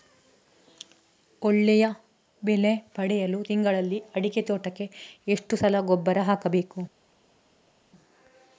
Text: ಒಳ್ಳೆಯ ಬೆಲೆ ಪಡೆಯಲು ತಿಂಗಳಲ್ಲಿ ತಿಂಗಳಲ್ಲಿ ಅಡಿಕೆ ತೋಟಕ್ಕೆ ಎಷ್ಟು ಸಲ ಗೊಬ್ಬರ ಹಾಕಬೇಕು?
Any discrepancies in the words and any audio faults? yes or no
yes